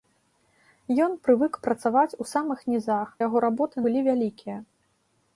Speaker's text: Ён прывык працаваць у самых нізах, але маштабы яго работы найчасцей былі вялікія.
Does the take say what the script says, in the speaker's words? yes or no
no